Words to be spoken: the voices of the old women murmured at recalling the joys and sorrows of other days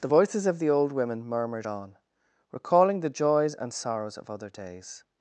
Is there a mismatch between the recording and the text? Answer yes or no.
yes